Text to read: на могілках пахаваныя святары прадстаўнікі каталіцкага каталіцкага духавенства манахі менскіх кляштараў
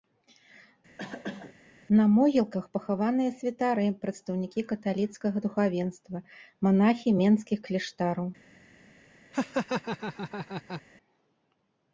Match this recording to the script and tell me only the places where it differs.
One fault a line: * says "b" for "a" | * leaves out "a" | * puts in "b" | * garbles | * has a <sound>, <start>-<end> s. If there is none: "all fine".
* has a cough, 1.0-1.5 s
* leaves out "каталіцкага"
* has a laugh, 9.3-10.8 s